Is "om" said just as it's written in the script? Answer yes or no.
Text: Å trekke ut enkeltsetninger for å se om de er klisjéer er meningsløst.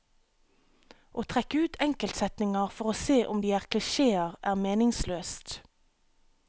yes